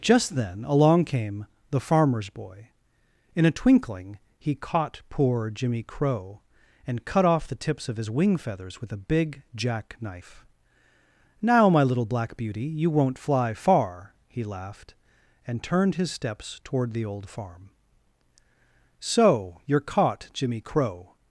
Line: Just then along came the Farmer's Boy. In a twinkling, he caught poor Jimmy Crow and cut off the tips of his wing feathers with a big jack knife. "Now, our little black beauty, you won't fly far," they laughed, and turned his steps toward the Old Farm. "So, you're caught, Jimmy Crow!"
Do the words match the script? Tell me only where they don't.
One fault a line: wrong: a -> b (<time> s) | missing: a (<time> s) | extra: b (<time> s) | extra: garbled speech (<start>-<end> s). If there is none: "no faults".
wrong: our -> my (11.7 s)
wrong: they -> he (14.3 s)